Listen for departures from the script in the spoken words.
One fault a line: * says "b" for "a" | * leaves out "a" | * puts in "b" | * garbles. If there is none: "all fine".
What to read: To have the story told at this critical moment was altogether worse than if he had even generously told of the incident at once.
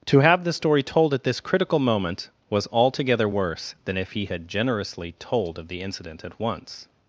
* leaves out "even"